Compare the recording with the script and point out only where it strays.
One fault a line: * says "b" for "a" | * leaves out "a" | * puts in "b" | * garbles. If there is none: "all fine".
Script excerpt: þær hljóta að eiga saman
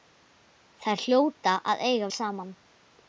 all fine